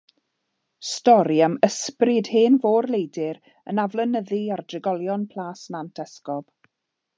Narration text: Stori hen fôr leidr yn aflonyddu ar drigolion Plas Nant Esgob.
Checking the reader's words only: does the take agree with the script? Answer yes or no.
no